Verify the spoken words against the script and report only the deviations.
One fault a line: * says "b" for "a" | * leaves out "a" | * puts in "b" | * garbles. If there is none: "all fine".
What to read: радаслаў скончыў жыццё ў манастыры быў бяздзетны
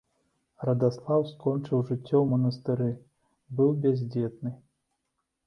all fine